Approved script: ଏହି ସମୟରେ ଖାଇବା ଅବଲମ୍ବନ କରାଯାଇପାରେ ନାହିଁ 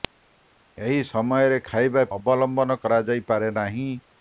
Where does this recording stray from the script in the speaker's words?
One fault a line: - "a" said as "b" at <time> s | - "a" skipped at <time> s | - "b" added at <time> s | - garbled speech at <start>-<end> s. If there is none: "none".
none